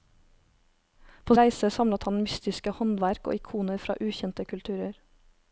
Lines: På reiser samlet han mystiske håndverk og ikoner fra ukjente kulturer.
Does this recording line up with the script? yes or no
yes